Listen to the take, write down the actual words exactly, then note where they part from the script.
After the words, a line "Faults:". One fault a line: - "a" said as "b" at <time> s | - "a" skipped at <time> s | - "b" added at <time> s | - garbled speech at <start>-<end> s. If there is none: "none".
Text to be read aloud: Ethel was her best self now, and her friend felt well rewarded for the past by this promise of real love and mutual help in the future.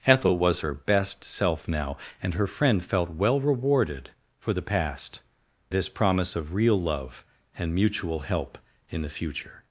Ethel was her best self now, and her friend felt well rewarded for the past this promise of real love and mutual help in the future.
Faults:
- "by" skipped at 5.2 s